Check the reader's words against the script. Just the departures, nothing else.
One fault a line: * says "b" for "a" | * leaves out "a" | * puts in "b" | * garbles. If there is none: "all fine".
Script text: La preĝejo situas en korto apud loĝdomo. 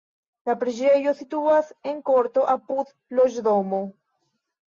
all fine